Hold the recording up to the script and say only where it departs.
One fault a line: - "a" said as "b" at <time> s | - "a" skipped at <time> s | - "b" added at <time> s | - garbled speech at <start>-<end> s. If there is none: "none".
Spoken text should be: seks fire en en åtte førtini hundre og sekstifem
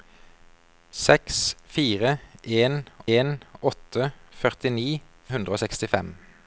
none